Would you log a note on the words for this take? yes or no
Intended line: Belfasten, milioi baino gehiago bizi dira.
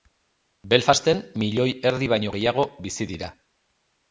yes